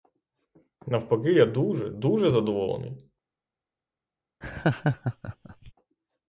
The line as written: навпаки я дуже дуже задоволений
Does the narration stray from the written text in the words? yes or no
no